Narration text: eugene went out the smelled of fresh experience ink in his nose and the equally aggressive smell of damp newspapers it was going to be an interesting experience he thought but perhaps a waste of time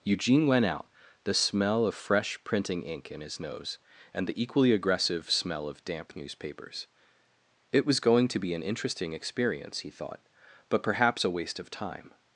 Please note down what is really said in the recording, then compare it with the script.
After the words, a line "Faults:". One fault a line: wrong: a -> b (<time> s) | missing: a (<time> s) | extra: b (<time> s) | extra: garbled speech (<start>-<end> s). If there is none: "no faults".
eugene went out the smell of fresh printing ink in his nose and the equally aggressive smell of damp newspapers it was going to be an interesting experience he thought but perhaps a waste of time
Faults:
wrong: smelled -> smell (1.3 s)
wrong: experience -> printing (2.4 s)